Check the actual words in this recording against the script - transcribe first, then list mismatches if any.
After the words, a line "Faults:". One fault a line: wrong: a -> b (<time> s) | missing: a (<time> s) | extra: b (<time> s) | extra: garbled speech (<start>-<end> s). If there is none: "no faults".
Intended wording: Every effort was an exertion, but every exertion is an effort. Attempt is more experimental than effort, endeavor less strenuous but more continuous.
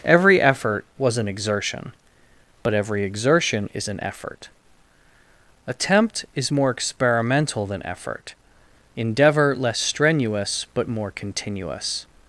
Every effort was an exertion, but every exertion is an effort. Attempt is more experimental than effort, endeavor less strenuous but more continuous.
Faults:
no faults